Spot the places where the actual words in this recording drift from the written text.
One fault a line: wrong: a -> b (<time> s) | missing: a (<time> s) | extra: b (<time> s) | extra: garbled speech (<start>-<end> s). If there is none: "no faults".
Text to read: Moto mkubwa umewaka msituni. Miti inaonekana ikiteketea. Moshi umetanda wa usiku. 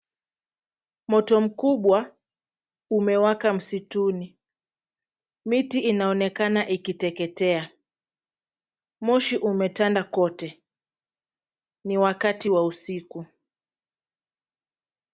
extra: kote Ni wakati (10.0 s)